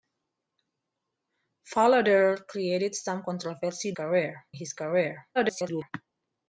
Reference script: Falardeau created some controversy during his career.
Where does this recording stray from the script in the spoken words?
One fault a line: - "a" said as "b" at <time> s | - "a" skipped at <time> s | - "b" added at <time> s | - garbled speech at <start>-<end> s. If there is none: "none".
- "during" said as "career" at 3.9 s
- garbled speech at 5.3-5.9 s